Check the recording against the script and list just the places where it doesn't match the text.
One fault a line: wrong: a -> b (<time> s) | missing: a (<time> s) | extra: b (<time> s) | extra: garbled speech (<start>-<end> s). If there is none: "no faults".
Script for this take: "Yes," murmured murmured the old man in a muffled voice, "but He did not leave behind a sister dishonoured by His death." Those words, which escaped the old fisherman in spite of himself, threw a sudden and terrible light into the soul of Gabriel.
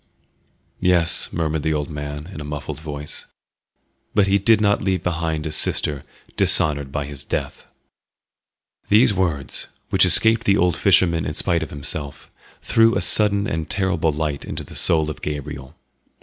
missing: murmured (1.6 s)
wrong: Those -> These (8.9 s)